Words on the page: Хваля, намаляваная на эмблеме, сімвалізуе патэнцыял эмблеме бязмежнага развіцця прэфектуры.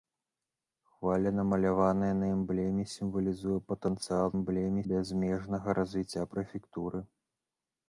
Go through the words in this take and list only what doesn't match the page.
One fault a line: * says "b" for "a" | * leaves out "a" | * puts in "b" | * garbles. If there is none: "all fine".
all fine